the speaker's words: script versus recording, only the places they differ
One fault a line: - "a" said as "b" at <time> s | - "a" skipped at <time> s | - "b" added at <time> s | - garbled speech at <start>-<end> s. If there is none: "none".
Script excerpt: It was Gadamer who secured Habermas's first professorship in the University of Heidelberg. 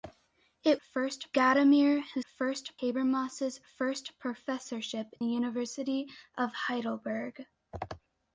- "was" said as "first" at 0.7 s
- "secured" said as "first" at 2.2 s
- "in" skipped at 5.1 s